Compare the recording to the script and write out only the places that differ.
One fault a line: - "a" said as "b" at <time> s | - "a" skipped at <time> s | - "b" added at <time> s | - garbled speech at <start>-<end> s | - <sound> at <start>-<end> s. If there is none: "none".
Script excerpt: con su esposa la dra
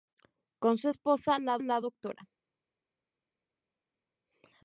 - "la" added at 1.6 s